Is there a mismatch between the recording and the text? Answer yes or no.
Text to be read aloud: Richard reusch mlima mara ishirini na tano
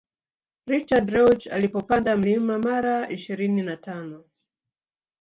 yes